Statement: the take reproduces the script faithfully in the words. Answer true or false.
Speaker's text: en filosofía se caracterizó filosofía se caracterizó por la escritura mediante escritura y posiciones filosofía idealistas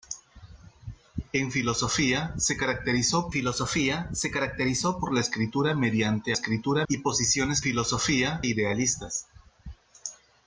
true